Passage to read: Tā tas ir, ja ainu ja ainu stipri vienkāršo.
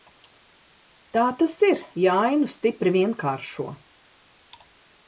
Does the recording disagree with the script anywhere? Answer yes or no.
yes